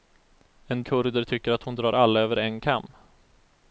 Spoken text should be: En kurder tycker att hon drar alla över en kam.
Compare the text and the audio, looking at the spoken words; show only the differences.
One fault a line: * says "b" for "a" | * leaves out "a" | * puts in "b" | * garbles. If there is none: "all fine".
all fine